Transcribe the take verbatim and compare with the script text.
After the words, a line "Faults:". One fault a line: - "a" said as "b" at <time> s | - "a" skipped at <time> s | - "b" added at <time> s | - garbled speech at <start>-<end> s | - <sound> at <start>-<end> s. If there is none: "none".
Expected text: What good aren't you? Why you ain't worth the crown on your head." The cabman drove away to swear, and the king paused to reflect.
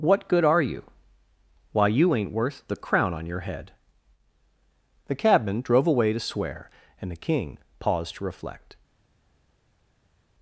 What good are you? Why you ain't worth the crown on your head." The cabman drove away to swear, and the king paused to reflect.
Faults:
- "aren't" said as "are" at 0.4 s